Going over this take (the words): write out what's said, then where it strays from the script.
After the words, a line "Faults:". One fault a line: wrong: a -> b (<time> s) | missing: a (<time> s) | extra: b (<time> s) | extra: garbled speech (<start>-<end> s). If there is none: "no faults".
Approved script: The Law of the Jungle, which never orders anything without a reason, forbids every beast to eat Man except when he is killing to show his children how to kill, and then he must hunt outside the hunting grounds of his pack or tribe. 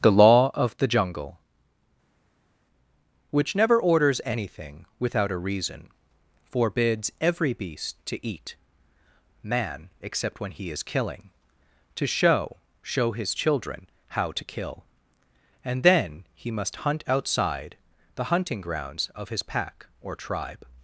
The Law of the Jungle, which never orders anything without a reason, forbids every beast to eat Man except when he is killing to show show his children how to kill, and then he must hunt outside the hunting grounds of his pack or tribe.
Faults:
extra: show (12.8 s)